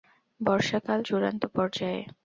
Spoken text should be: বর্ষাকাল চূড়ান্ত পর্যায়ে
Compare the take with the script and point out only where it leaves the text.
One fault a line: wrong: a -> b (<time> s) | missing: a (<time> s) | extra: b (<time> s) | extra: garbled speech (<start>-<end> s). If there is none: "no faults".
no faults